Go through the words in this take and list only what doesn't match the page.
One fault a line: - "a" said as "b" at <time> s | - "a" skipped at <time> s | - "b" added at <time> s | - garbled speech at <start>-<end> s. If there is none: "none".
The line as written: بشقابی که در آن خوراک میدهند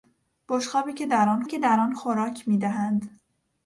- "که در آن" added at 1.5 s